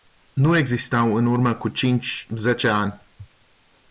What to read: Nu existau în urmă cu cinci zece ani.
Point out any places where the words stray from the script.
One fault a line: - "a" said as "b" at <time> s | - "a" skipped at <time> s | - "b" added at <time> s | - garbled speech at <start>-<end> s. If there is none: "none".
none